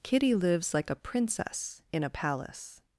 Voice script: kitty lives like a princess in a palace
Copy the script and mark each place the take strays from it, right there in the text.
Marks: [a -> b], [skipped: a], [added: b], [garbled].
kitty lives like a princess in a palace